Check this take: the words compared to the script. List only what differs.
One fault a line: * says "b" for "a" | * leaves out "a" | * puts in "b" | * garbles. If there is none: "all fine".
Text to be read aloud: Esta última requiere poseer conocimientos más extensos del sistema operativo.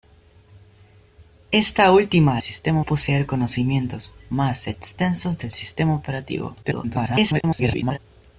* says "sistema" for "requiere"
* garbles